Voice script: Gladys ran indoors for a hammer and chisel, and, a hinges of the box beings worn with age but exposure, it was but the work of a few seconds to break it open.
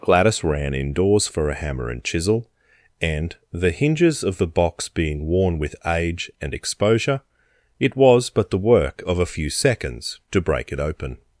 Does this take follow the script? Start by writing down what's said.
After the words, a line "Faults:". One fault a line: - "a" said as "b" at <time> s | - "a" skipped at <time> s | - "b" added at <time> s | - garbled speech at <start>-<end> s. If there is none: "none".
Gladys ran indoors for a hammer and chisel, and, the hinges of the box being worn with age and exposure, it was but the work of a few seconds to break it open.
Faults:
- "a" said as "the" at 3.5 s
- "beings" said as "being" at 4.9 s
- "but" said as "and" at 6.4 s